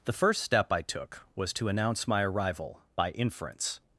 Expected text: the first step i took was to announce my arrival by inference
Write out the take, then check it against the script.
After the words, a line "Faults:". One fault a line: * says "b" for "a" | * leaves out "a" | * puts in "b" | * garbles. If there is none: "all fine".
the first step i took was to announce my arrival by inference
Faults:
all fine